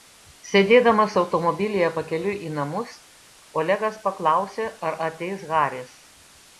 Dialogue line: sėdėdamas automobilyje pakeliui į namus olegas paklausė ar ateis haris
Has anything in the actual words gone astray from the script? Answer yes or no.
no